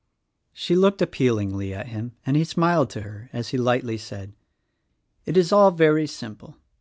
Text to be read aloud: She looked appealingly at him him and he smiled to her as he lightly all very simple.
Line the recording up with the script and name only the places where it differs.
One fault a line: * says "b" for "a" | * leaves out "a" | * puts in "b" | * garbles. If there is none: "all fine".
* leaves out "him"
* puts in "said It is"